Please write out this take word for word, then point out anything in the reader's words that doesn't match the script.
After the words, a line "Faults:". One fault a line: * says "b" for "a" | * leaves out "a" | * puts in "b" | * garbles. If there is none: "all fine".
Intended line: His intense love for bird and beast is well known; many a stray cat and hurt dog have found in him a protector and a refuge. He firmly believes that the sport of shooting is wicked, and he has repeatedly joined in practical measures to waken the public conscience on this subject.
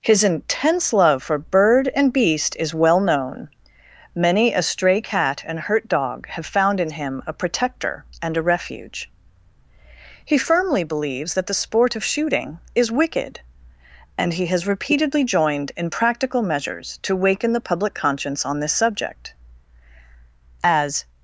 His intense love for bird and beast is well known; many a stray cat and hurt dog have found in him a protector and a refuge. He firmly believes that the sport of shooting is wicked, and he has repeatedly joined in practical measures to waken the public conscience on this subject. As
Faults:
* puts in "As"